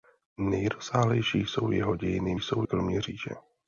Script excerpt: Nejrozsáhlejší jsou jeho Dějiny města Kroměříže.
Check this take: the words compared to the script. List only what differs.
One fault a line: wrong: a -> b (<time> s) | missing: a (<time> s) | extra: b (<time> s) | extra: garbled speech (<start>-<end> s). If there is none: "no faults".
wrong: města -> jsou (2.3 s)